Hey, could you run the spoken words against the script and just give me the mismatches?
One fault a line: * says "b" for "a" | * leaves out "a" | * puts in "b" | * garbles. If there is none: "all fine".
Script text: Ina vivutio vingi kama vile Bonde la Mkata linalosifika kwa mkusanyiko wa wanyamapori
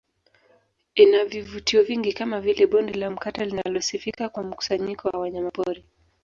all fine